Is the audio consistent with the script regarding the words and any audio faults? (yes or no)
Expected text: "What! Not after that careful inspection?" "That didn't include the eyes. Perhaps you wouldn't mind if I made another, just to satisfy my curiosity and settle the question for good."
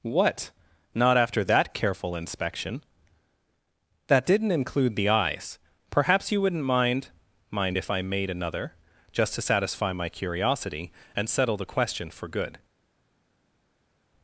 no